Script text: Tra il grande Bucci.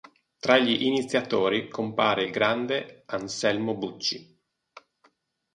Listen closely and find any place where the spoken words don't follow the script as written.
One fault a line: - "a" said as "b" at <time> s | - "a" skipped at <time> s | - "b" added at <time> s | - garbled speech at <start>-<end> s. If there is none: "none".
- "gli iniziatori compare" added at 0.6 s
- "Anselmo" added at 3.1 s